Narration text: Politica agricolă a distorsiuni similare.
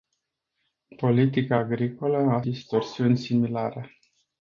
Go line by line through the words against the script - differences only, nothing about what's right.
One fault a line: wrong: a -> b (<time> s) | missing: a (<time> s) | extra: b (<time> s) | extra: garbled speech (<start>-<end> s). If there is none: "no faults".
no faults